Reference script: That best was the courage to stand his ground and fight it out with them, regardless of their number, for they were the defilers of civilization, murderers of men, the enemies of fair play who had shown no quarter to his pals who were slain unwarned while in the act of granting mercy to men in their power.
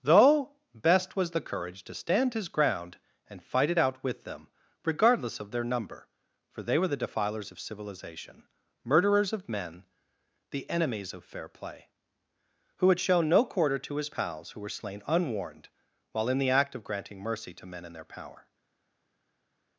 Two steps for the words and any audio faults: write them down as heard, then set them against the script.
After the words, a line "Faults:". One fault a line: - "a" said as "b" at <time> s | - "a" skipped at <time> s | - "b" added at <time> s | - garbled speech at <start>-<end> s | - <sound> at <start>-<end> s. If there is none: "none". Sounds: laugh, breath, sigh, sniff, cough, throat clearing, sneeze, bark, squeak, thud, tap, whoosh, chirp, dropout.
Though best was the courage to stand his ground and fight it out with them, regardless of their number, for they were the defilers of civilization, murderers of men, the enemies of fair play who had shown no quarter to his pals who were slain unwarned while in the act of granting mercy to men in their power.
Faults:
- "That" said as "Though" at 0.0 s